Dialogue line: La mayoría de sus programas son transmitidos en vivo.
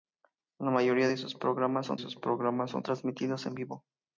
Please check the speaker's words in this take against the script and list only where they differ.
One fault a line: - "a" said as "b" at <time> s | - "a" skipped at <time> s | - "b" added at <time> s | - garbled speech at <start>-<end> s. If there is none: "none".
- "sus programas son" added at 2.0 s